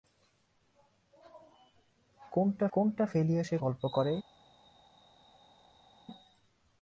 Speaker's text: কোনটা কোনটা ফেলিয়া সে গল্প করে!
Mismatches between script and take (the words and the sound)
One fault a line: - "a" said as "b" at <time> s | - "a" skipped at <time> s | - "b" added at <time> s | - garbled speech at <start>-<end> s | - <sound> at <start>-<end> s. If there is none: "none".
none